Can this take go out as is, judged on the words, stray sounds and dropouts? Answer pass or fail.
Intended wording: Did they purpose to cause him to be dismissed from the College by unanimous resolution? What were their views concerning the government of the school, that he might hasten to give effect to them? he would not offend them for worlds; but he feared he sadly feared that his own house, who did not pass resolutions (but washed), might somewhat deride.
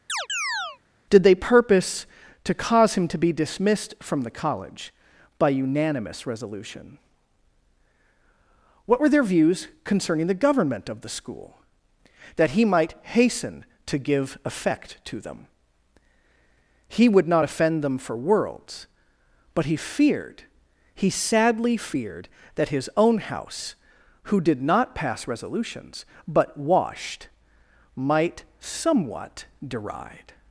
fail